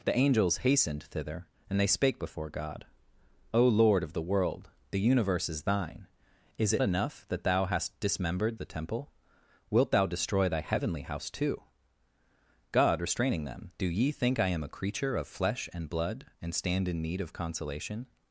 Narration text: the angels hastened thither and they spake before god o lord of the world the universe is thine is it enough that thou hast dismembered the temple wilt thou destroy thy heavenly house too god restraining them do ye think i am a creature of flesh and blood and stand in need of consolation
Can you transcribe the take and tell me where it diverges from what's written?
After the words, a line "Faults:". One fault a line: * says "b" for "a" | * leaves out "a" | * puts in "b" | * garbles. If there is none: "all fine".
the angels hastened thither and they spake before god o lord of the world the universe is thine is it enough that thou hast dismembered the temple wilt thou destroy thy heavenly house too god restraining them do ye think i am a creature of flesh and blood and stand in need of consolation
Faults:
all fine